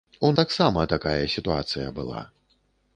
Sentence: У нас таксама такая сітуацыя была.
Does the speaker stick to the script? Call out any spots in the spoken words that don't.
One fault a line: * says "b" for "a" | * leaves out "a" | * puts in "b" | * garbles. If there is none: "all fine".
* leaves out "нас"